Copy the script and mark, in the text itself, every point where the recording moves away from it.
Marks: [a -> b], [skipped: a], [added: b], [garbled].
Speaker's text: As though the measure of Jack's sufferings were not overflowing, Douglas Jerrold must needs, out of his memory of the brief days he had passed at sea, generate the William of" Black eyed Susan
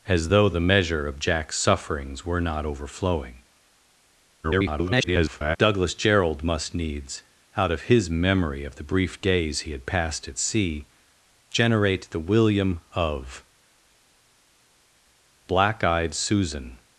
As though the measure of Jack's sufferings were not overflowing, [garbled] Douglas Jerrold must needs, out of his memory of the brief days he had passed at sea, generate the William of" Black eyed Susan